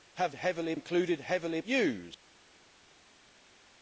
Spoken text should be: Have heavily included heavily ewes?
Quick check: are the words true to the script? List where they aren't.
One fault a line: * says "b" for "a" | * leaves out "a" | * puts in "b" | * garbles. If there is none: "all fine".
all fine